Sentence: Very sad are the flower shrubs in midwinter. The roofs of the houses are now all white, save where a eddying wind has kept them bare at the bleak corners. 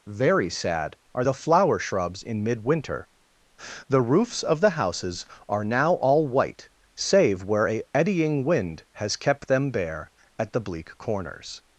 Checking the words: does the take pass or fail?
pass